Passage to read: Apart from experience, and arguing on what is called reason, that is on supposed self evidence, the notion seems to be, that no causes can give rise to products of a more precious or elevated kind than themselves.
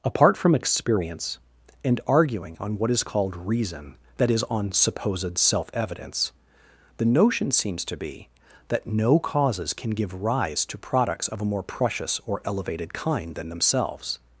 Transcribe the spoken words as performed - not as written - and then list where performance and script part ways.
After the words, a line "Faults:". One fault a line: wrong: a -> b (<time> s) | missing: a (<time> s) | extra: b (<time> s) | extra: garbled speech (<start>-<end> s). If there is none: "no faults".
Apart from experience, and arguing on what is called reason, that is on supposed self evidence, the notion seems to be, that no causes can give rise to products of a more precious or elevated kind than themselves.
Faults:
no faults